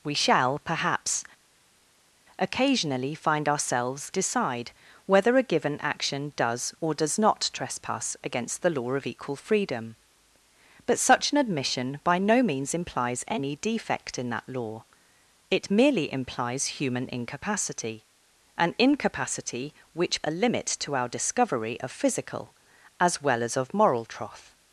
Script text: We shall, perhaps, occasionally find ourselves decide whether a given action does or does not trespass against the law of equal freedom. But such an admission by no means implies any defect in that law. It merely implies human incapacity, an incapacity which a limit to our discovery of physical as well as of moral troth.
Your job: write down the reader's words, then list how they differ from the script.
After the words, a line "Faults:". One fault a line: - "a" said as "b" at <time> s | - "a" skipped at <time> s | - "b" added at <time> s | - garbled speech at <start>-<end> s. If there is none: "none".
We shall, perhaps, occasionally find ourselves decide whether a given action does or does not trespass against the law of equal freedom. But such an admission by no means implies any defect in that law. It merely implies human incapacity, an incapacity which a limit to our discovery of physical as well as of moral troth.
Faults:
none